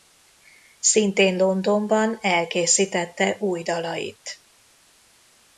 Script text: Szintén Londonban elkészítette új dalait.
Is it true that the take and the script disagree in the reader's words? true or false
false